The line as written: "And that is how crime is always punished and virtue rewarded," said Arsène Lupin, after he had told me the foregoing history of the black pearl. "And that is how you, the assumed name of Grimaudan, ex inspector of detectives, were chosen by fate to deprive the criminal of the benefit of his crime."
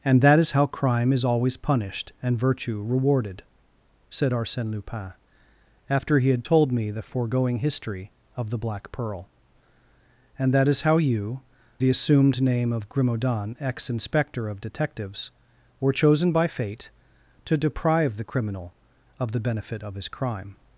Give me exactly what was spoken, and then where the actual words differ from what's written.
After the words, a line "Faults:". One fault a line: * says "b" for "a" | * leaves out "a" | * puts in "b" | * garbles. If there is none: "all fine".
"And that is how crime is always punished and virtue rewarded," said Arsène Lupin, after he had told me the foregoing history of the black pearl. "And that is how you, the assumed name of Grimaudan, ex inspector of detectives, were chosen by fate to deprive the criminal of the benefit of his crime."
Faults:
all fine